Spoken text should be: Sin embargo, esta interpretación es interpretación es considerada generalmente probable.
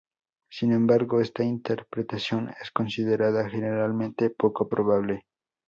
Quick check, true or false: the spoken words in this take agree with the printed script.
false